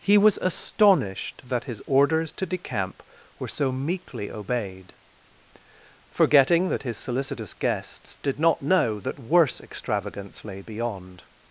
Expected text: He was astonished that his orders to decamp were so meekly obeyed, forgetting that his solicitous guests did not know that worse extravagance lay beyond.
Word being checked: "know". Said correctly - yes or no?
yes